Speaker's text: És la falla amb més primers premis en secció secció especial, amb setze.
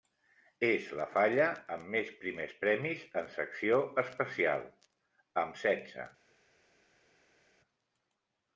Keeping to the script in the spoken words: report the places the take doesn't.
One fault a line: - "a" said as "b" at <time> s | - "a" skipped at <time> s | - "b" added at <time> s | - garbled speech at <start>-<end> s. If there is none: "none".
- "secció" skipped at 3.8 s